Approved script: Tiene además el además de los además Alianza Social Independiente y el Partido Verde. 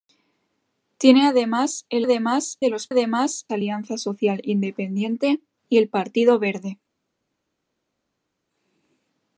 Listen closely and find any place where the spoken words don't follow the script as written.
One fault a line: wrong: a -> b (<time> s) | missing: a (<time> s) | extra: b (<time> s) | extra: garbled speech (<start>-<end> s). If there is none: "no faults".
no faults